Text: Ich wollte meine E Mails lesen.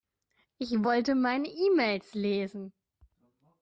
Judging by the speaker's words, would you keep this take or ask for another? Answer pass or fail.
pass